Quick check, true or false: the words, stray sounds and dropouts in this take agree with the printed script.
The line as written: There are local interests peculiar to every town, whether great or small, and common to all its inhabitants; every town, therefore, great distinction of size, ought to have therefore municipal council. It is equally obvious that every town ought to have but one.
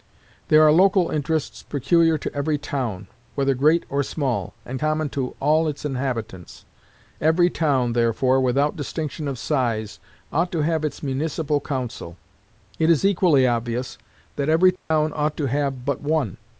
false